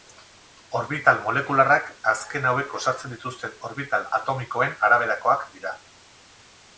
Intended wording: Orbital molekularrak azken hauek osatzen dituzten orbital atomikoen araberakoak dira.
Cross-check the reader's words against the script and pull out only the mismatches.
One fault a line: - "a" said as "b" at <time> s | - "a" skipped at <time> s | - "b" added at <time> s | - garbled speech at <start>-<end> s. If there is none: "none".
none